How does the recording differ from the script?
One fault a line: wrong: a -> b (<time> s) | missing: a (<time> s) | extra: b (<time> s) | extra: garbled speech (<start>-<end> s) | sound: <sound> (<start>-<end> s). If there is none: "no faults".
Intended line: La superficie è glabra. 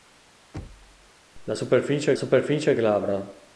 sound: thud (0.5-1.1 s)
extra: superficie (2.1 s)